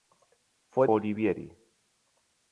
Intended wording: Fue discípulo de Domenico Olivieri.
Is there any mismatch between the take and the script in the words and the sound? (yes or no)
yes